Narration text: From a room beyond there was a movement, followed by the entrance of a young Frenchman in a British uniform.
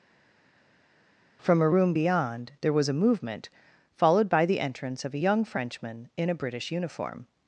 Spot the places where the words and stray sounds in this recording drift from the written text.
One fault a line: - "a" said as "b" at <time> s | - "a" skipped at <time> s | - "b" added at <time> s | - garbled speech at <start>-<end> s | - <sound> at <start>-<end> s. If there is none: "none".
none